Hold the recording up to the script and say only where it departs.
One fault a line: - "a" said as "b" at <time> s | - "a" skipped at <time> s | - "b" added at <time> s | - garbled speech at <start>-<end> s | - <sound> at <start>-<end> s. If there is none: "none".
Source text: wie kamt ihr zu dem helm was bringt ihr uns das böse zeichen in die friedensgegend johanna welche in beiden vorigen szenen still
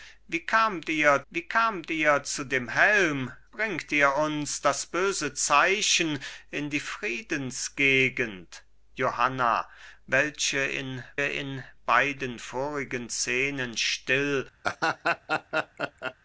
- "wie kamt ihr" added at 1.3 s
- "was" skipped at 3.3 s
- "in" added at 11.2 s
- laugh at 14.6-16.1 s